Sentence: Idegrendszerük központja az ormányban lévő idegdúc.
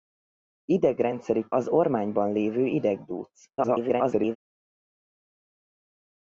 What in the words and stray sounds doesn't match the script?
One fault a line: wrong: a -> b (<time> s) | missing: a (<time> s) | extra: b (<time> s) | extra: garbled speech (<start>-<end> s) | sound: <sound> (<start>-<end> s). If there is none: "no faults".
missing: központja (1.5 s)
extra: garbled speech (3.6-4.4 s)